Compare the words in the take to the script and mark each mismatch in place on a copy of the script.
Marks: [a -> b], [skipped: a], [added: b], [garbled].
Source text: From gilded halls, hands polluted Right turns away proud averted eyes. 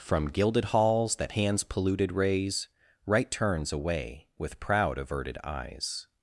From gilded halls, [added: that] hands polluted [added: raise] Right turns away [added: with] proud averted eyes.